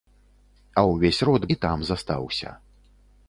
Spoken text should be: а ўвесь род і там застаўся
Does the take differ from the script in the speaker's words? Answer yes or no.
no